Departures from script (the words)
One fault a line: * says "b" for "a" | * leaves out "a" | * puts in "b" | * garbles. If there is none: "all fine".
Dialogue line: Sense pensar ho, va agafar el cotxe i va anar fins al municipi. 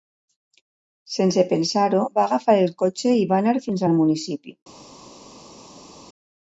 all fine